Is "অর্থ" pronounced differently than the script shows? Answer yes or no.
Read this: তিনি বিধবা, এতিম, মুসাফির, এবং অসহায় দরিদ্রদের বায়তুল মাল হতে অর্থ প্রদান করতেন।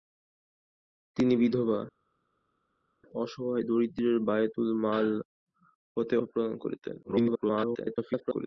yes